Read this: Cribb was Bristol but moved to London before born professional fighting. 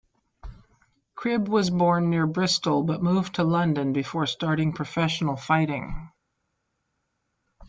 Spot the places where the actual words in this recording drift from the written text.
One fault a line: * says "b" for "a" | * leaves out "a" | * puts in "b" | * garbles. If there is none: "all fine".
* puts in "born near"
* says "starting" for "born"